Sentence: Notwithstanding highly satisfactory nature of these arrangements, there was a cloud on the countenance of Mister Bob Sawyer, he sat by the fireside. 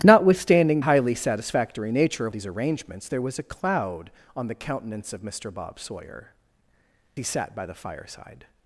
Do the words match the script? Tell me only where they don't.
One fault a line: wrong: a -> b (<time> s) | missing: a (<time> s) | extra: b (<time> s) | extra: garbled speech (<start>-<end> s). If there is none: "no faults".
no faults